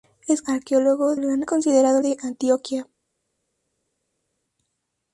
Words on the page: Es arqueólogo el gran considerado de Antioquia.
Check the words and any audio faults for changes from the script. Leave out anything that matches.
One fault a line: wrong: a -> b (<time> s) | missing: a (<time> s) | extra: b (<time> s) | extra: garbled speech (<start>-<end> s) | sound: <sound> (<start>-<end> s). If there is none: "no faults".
no faults